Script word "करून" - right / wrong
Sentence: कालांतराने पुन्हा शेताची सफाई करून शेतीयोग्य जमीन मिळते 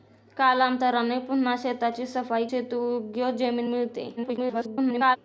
wrong